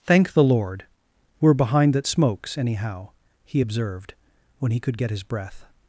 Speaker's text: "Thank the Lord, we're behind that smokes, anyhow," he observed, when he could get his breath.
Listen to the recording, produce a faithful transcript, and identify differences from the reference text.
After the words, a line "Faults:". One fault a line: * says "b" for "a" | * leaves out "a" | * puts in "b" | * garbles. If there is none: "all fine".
"Thank the Lord, we're behind that smokes, anyhow," he observed, when he could get his breath.
Faults:
all fine